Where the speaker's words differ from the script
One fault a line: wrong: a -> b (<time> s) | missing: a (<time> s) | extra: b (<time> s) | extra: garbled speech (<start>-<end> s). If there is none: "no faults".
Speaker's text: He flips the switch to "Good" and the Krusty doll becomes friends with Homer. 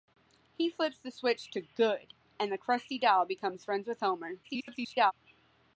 extra: garbled speech (4.4-5.1 s)